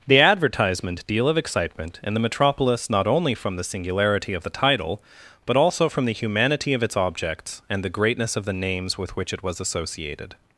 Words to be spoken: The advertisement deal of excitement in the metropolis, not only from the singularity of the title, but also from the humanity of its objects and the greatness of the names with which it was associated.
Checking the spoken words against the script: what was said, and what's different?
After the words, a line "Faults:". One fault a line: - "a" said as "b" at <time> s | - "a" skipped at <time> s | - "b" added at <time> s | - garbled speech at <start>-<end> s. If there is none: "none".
The advertisement deal of excitement in the metropolis, not only from the singularity of the title, but also from the humanity of its objects and the greatness of the names with which it was associated.
Faults:
none